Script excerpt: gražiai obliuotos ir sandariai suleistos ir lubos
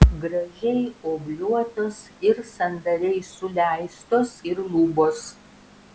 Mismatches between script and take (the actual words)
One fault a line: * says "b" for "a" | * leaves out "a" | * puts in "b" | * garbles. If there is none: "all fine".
all fine